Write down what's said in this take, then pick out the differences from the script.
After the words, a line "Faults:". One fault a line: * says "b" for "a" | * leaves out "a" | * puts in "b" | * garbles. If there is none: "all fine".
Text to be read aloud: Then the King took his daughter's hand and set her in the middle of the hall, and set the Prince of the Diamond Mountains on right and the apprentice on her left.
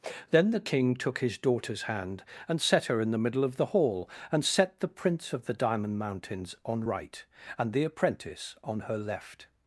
Then the King took his daughter's hand and set her in the middle of the hall, and set the Prince of the Diamond Mountains on right and the apprentice on her left.
Faults:
all fine